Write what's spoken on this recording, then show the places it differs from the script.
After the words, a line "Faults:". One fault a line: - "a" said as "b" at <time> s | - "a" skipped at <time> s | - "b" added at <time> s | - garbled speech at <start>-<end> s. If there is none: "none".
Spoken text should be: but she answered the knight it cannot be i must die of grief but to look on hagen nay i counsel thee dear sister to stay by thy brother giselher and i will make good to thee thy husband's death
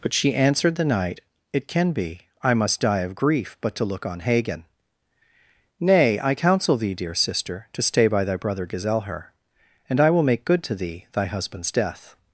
but she answered the knight it can be i must die of grief but to look on hagen nay i counsel thee dear sister to stay by thy brother giselher and i will make good to thee thy husband's death
Faults:
- "cannot" said as "can" at 1.7 s